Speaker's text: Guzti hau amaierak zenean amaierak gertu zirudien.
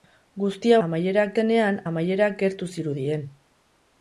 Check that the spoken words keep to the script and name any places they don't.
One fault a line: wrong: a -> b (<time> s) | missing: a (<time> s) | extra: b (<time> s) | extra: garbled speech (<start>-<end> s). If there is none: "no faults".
no faults